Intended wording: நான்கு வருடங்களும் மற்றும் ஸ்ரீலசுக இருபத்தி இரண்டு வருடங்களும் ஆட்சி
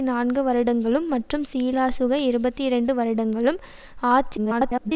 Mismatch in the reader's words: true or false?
true